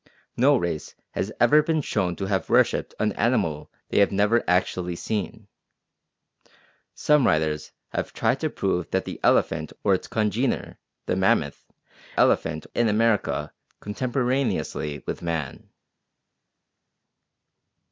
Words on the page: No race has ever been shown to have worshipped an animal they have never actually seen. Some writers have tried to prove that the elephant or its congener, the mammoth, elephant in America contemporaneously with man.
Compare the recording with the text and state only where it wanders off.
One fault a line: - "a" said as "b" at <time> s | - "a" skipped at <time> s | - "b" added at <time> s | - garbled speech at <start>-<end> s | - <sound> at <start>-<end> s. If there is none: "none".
none